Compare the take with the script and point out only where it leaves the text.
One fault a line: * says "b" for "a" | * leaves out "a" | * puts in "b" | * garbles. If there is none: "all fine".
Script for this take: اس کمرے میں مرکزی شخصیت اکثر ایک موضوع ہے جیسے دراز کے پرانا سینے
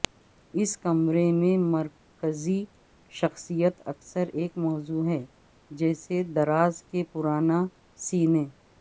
all fine